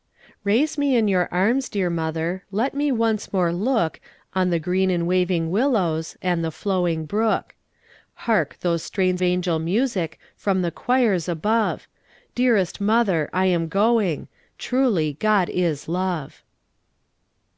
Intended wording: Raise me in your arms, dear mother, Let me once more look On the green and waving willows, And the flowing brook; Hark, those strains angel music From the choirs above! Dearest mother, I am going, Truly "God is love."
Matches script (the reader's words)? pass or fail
pass